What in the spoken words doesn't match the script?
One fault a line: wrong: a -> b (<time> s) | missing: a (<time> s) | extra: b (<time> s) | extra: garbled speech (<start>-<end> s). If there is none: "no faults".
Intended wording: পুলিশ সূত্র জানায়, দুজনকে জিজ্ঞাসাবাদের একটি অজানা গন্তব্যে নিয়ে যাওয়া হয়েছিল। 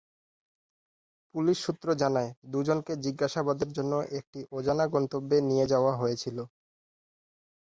extra: জন্য (3.8 s)